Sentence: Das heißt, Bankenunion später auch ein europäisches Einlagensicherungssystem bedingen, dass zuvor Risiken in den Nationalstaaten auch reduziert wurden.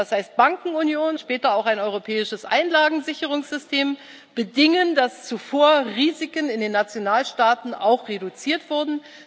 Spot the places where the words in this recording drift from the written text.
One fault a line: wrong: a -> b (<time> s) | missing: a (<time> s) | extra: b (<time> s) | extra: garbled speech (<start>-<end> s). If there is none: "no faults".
no faults